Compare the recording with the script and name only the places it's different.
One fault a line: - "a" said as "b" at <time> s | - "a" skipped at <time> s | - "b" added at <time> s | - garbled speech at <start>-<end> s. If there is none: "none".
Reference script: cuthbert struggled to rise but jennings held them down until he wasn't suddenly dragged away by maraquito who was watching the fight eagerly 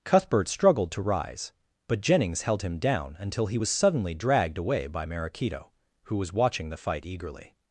- "them" said as "him" at 2.6 s
- "wasn't" said as "was" at 3.6 s